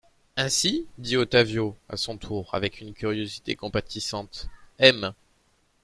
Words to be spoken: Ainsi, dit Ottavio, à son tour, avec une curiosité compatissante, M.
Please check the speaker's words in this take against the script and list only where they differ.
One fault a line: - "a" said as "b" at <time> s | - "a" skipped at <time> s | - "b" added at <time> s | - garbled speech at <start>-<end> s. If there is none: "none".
none